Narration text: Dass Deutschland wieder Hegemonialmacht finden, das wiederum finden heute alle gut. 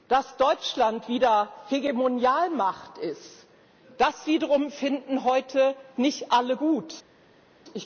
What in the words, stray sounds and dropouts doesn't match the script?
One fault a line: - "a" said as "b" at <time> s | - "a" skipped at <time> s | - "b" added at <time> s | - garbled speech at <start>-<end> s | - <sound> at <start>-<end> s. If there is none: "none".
- "finden" said as "ist" at 3.0 s
- "nicht" added at 6.0 s